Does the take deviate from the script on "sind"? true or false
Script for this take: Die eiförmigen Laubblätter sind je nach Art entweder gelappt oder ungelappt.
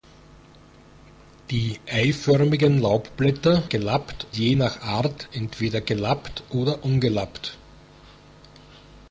true